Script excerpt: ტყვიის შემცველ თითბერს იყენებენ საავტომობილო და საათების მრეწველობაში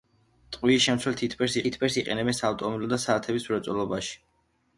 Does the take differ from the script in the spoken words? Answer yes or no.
yes